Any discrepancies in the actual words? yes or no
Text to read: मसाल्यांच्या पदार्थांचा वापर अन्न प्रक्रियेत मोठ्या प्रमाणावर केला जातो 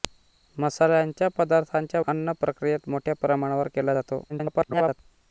yes